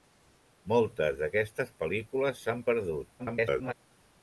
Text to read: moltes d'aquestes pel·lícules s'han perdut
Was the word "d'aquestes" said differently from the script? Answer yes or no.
no